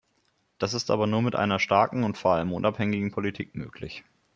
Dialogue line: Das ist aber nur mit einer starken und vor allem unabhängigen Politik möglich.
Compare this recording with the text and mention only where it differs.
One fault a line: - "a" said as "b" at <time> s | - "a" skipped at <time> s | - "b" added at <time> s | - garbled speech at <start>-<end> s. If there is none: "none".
none